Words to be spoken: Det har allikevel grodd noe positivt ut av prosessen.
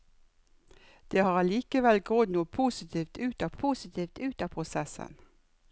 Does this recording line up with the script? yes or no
no